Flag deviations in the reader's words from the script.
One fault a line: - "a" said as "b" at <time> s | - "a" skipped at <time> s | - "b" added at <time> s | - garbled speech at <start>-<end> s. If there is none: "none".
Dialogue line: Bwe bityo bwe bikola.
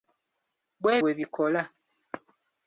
- "bityo" skipped at 0.9 s